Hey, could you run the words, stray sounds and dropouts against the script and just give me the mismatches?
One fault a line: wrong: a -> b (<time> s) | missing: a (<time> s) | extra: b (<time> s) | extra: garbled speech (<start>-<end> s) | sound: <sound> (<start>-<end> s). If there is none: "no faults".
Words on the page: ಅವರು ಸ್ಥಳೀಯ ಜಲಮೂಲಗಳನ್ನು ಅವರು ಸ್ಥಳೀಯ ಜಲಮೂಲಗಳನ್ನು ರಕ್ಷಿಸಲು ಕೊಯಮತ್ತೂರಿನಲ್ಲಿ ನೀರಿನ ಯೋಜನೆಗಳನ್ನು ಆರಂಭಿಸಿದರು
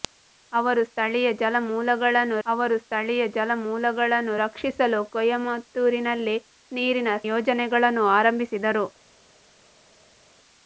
no faults